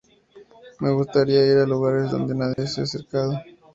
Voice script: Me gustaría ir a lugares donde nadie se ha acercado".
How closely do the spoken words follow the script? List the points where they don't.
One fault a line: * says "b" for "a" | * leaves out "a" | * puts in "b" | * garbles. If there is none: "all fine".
all fine